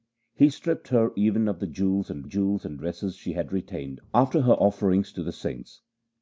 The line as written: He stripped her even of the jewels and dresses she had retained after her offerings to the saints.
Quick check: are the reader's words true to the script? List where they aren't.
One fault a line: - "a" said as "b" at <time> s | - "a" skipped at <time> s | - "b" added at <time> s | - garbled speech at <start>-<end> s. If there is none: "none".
- "jewels and" added at 2.2 s